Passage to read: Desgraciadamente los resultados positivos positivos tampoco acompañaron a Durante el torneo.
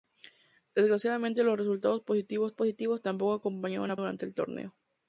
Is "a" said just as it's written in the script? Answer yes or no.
yes